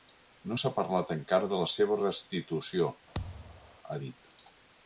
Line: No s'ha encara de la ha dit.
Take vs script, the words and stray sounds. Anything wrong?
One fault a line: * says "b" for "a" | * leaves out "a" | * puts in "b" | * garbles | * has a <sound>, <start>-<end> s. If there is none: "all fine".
* puts in "parlat"
* puts in "seva restitució"
* has a thud, 3.1-3.8 s